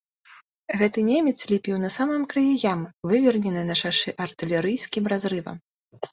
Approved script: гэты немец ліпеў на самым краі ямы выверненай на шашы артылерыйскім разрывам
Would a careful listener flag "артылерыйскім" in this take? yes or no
no